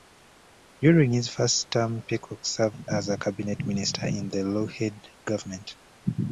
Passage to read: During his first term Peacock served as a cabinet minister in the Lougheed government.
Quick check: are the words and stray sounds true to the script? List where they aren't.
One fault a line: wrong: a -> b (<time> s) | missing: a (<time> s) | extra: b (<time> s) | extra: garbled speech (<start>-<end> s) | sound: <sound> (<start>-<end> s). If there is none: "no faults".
no faults